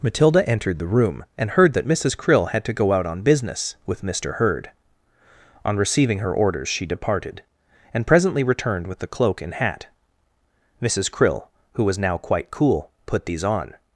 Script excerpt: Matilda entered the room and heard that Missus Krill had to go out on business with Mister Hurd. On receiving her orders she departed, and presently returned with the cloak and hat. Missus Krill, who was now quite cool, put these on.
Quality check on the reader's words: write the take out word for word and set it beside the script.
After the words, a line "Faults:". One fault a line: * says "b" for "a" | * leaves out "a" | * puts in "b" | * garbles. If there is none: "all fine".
Matilda entered the room and heard that Missus Krill had to go out on business with Mister Hurd. On receiving her orders she departed, and presently returned with the cloak and hat. Missus Krill, who was now quite cool, put these on.
Faults:
all fine